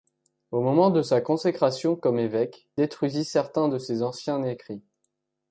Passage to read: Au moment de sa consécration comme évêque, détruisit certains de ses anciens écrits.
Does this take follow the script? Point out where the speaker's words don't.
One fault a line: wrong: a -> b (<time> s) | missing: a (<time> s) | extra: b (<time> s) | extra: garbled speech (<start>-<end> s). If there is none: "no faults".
no faults